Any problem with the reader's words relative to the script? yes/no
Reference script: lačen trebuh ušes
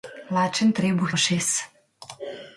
no